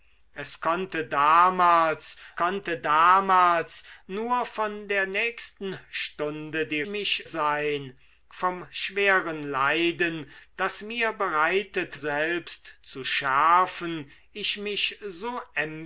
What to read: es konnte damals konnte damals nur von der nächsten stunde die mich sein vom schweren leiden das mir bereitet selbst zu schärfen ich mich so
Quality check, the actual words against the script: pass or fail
pass